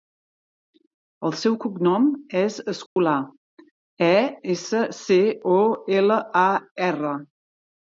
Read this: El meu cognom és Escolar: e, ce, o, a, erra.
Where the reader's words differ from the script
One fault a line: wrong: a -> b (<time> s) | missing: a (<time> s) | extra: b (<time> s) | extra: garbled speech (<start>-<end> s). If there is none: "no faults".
wrong: meu -> seu (1.4 s)
extra: essa (4.6 s)
extra: ela (6.0 s)